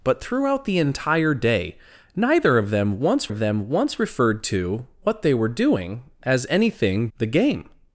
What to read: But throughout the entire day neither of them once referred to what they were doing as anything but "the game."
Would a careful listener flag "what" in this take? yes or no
no